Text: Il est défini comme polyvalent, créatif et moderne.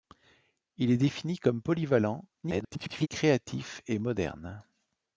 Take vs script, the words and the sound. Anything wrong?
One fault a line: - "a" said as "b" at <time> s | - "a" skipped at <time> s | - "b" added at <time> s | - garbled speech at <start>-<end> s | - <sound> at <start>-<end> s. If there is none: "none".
- garbled speech at 2.4-3.1 s